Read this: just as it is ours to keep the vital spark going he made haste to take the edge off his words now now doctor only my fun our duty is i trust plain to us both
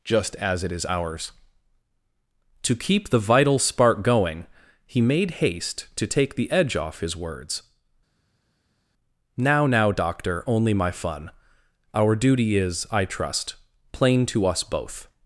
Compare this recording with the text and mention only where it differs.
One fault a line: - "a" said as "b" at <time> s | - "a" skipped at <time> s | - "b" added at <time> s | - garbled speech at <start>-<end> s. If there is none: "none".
none